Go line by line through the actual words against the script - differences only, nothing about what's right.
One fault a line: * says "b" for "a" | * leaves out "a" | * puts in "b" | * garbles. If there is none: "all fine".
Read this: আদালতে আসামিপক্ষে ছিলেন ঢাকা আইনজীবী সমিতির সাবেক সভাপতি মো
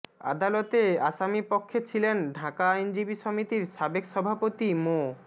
all fine